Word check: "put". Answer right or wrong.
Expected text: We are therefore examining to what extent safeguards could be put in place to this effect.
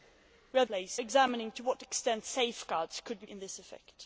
wrong